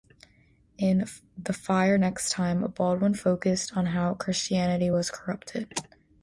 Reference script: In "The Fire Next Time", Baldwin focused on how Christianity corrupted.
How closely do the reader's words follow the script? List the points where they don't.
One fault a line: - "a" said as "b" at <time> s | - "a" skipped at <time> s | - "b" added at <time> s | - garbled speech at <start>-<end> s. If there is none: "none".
- "was" added at 4.9 s